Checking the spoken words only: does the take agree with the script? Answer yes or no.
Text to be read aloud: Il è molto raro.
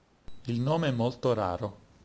no